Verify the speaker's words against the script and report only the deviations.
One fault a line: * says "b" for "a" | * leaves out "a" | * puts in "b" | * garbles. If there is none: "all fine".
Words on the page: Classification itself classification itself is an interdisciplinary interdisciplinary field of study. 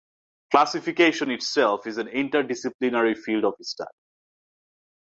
* leaves out "classification itself"
* leaves out "interdisciplinary"